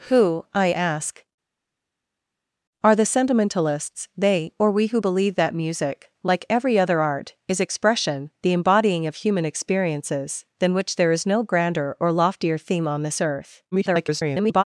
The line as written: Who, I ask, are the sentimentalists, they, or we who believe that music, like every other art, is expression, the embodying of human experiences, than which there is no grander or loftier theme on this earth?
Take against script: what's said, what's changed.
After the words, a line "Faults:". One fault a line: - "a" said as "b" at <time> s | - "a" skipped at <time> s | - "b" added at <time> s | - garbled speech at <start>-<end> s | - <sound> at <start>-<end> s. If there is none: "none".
Who, I ask, are the sentimentalists, they, or we who believe that music, like every other art, is expression, the embodying of human experiences, than which there is no grander or loftier theme on this earth? [garbled]
Faults:
- garbled speech at 13.7-14.6 s